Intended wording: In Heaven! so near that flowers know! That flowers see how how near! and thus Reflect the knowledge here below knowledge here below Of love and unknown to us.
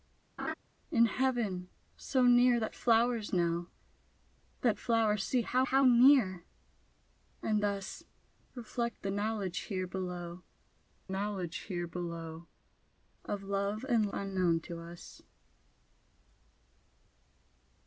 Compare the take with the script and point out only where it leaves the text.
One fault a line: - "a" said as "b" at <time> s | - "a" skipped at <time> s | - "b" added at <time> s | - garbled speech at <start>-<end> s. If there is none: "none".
none